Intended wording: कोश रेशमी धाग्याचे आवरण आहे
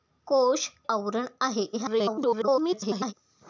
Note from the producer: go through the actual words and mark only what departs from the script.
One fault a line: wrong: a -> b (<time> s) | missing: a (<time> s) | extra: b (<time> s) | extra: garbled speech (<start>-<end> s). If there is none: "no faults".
missing: रेशमी धाग्याचे (0.7 s)
extra: garbled speech (1.7-3.1 s)